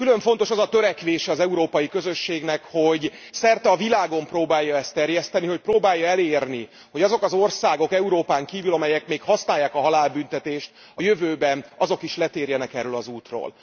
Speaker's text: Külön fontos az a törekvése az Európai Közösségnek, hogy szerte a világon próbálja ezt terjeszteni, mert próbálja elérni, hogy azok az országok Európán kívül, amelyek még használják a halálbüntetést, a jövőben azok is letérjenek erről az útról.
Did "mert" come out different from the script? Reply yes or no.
yes